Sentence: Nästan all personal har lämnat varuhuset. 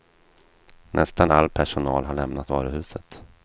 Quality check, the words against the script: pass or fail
pass